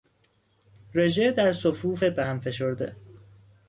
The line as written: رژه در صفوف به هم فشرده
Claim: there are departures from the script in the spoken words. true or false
false